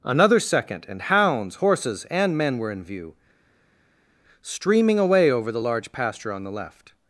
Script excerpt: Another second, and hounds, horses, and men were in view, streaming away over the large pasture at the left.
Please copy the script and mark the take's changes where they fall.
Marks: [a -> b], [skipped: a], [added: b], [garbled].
Another second, and hounds, horses, and men were in view, streaming away over the large pasture [at -> on] the left.